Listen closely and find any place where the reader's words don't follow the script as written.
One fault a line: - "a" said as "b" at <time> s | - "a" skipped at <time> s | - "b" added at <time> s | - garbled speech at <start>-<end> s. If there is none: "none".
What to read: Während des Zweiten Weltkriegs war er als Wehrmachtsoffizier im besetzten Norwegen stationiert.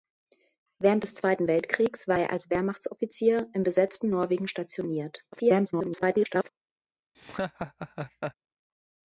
- garbled speech at 5.3-6.5 s